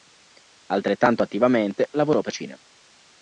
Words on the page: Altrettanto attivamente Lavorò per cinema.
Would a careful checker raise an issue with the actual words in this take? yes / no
no